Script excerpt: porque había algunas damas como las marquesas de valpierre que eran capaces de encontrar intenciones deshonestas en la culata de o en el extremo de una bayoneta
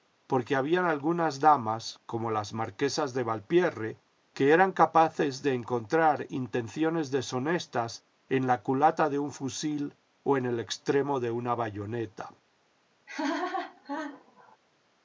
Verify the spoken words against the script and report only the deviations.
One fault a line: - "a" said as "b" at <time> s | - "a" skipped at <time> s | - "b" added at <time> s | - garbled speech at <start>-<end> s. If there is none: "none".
- "un fusil" added at 9.2 s